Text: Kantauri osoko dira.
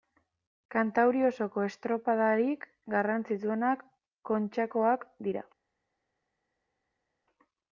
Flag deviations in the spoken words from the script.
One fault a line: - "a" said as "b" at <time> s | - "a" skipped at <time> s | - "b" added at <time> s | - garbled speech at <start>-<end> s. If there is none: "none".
- "estropadarik garrantzitsuenak Kontxakoak" added at 1.7 s